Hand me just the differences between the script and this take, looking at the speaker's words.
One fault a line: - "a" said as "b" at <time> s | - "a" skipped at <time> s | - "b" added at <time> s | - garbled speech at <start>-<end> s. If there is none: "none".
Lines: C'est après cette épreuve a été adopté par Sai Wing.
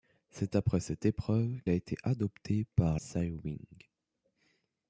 none